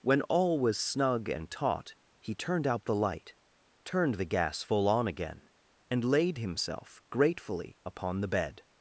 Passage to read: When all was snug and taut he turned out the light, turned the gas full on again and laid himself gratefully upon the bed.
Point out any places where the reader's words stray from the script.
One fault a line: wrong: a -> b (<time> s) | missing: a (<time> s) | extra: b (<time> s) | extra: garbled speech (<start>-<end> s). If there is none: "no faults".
no faults